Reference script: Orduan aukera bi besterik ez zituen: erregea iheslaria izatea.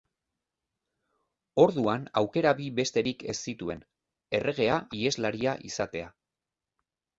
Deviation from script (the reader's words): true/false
false